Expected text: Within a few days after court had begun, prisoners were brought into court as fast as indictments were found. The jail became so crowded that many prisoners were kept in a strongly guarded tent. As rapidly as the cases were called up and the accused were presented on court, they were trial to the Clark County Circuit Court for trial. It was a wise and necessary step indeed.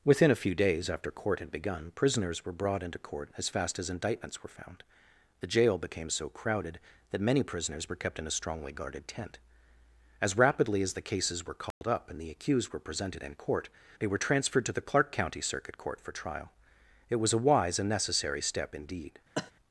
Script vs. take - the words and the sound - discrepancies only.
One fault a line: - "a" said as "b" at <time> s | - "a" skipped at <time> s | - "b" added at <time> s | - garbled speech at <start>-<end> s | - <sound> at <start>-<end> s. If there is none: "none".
- dropout at 11.7-11.8 s
- "on" said as "in" at 13.2 s
- "trial" said as "transferred" at 14.2 s
- cough at 19.4-19.5 s